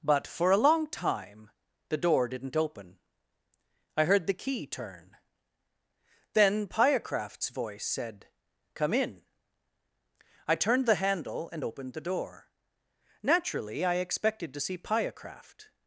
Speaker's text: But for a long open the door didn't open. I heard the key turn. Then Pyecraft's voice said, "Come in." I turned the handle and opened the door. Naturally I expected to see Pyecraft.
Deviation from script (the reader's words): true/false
true